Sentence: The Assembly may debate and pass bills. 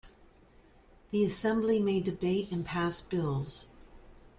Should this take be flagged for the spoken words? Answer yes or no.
no